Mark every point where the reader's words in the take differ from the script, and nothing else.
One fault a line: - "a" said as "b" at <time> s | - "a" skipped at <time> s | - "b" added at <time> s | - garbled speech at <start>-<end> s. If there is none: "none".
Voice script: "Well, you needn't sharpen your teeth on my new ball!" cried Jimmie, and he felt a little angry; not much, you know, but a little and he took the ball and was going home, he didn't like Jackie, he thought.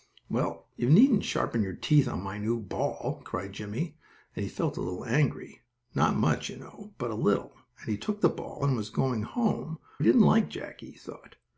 none